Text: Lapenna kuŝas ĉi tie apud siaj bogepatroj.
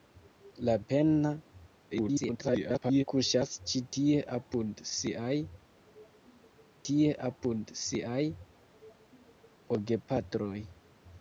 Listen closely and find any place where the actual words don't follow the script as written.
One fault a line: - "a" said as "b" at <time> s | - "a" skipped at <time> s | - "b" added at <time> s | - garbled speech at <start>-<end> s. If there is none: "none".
- garbled speech at 1.9-3.0 s
- "tie apud siaj" added at 6.9 s